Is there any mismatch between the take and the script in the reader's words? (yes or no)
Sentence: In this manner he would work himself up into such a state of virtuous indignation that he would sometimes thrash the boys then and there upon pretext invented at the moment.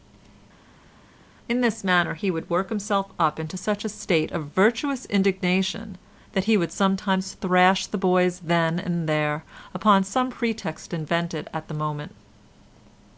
yes